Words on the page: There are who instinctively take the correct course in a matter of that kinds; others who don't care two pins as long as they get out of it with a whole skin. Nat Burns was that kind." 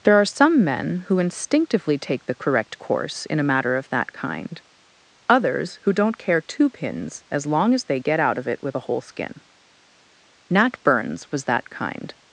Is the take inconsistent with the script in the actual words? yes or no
yes